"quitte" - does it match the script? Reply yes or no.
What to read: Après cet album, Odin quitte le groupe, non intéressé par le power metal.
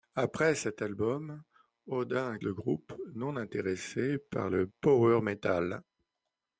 no